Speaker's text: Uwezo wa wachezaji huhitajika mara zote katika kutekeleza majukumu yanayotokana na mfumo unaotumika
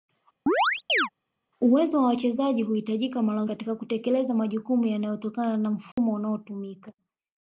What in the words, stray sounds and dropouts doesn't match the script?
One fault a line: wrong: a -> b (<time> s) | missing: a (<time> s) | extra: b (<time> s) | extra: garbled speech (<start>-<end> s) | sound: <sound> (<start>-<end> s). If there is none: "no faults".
sound: chirp (0.5-1.1 s)
missing: zote (3.4 s)
sound: dropout (5.9-6.0 s)